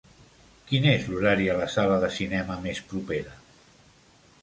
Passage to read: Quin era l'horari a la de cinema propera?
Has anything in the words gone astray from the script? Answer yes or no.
yes